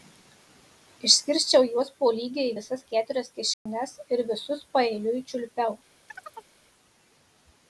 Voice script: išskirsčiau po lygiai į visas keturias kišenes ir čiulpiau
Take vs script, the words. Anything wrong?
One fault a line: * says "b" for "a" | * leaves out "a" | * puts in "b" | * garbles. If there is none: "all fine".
* puts in "juos"
* puts in "visus paeiliui"